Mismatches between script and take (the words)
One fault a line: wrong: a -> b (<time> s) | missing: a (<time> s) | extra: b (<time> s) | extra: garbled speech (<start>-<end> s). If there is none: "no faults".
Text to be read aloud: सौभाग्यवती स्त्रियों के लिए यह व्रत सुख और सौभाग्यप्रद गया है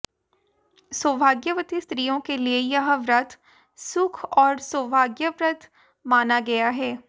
extra: माना (6.0 s)